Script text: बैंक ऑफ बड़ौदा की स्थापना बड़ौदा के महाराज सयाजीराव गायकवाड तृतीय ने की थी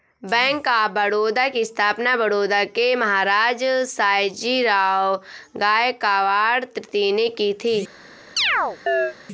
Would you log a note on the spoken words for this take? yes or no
no